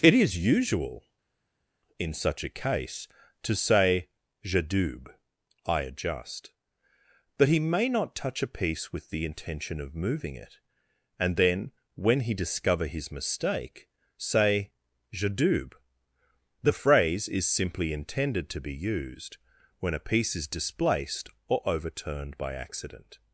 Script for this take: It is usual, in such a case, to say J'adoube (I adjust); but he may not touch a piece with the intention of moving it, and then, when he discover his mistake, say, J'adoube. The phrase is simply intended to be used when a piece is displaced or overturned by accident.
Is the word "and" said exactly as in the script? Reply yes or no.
yes